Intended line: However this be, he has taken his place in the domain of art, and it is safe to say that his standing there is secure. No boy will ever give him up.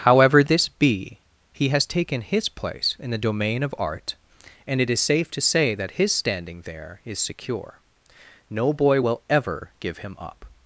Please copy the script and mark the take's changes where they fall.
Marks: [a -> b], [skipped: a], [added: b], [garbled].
However this be, he has taken his place in the domain of art, and it is safe to say that his standing there is secure. No boy will ever give him up.